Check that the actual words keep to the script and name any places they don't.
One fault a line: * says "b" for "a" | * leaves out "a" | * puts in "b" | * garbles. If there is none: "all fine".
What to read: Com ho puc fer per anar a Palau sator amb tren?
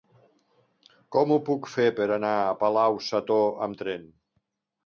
all fine